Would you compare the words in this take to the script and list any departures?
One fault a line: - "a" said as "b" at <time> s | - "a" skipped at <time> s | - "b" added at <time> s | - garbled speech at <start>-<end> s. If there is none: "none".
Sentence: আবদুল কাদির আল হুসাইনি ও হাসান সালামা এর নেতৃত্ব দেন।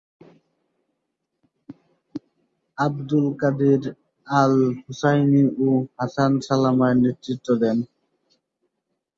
none